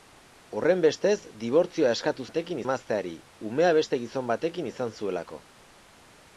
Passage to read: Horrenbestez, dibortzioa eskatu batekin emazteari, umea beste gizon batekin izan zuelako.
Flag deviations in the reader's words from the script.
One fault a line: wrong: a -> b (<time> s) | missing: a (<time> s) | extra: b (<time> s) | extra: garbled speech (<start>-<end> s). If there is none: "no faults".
no faults